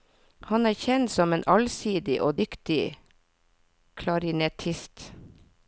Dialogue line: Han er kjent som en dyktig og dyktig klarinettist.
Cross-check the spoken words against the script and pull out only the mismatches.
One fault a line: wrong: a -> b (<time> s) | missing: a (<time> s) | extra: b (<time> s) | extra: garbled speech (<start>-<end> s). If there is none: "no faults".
wrong: dyktig -> allsidig (1.6 s)